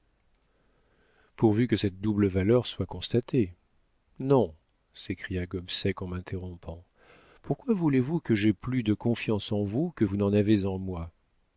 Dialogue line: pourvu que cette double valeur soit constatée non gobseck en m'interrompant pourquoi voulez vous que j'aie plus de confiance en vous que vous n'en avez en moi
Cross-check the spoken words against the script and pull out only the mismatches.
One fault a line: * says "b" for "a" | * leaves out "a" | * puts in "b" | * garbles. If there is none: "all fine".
* puts in "s'écria"